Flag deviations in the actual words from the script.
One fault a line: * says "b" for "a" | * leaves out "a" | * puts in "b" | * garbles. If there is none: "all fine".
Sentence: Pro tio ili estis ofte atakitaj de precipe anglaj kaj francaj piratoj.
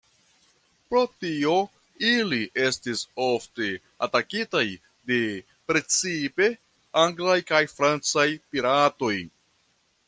all fine